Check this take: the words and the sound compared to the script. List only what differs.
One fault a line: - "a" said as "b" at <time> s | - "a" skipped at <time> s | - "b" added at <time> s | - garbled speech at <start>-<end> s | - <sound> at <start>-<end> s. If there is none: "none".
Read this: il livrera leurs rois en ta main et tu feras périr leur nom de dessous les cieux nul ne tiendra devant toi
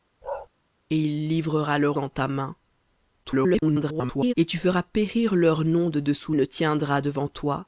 - bark at 0.2-0.5 s
- "rois" skipped at 2.0 s
- garbled speech at 3.2-4.3 s
- "les cieux nul" skipped at 6.3 s